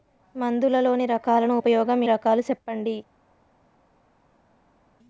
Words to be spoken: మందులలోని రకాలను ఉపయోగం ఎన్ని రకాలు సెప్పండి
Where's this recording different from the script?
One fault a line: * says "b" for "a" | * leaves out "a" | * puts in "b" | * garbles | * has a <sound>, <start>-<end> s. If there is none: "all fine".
* leaves out "ఎన్ని"